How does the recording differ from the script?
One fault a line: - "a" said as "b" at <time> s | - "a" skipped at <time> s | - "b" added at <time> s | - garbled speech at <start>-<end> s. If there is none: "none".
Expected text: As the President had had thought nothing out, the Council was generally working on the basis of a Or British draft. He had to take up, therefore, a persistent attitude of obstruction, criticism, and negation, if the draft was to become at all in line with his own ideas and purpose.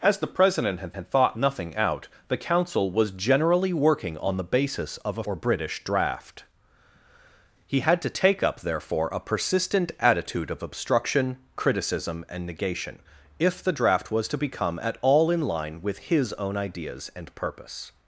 none